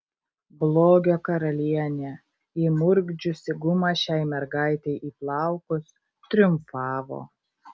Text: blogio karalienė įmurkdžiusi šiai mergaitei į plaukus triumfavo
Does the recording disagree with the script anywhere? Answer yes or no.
yes